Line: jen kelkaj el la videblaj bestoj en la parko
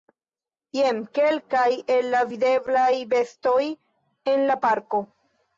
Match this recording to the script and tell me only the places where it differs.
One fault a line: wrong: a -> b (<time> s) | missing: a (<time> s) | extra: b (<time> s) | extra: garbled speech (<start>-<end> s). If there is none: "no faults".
no faults